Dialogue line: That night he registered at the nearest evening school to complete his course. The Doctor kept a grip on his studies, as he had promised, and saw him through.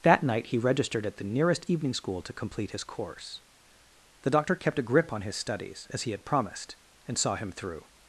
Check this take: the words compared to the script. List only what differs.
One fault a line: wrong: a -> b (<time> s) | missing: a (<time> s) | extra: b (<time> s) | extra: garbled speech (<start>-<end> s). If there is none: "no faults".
no faults